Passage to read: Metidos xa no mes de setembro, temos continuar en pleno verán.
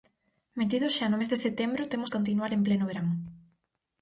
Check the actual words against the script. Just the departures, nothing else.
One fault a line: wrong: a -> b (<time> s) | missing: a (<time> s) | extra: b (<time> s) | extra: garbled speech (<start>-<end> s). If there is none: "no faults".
no faults